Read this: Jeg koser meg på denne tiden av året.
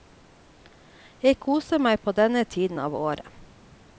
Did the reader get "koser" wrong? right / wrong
right